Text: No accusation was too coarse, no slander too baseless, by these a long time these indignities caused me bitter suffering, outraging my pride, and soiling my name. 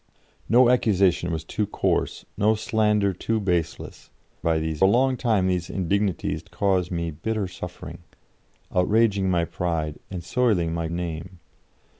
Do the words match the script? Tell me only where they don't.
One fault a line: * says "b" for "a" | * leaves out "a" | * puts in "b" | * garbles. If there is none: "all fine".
all fine